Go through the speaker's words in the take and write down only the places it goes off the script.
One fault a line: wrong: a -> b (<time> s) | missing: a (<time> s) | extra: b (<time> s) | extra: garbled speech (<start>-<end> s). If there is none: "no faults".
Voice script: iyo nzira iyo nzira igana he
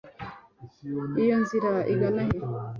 missing: iyo nzira (1.7 s)